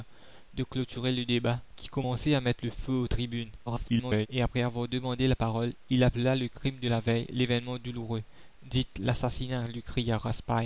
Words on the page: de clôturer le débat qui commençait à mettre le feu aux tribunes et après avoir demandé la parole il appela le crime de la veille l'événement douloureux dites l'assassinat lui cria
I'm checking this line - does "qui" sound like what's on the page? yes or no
yes